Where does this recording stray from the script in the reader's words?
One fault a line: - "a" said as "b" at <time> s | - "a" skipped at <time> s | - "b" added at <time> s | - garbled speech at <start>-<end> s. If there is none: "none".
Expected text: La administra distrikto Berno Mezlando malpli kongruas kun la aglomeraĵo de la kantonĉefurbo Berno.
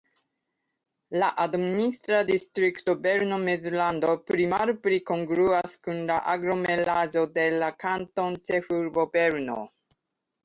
- "pli" added at 4.3 s